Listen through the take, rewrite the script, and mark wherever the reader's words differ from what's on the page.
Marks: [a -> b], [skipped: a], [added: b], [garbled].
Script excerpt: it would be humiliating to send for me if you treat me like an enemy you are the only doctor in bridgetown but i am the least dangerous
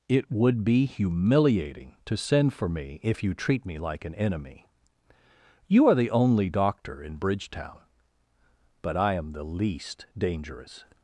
it would be humiliating to send for me if you treat me like an enemy you are the only doctor in bridgetown but i am the least dangerous